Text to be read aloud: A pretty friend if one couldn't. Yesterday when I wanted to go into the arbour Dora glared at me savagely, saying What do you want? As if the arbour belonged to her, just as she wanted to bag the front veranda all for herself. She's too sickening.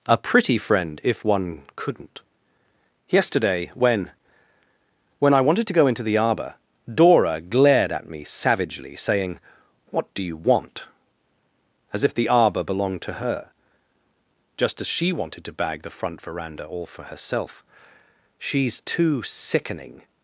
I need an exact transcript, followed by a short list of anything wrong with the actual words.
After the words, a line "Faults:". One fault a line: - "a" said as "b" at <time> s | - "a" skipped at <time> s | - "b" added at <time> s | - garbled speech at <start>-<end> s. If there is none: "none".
A pretty friend if one couldn't. Yesterday when when I wanted to go into the arbour Dora glared at me savagely, saying What do you want? As if the arbour belonged to her, just as she wanted to bag the front veranda all for herself. She's too sickening.
Faults:
- "when" added at 5.2 s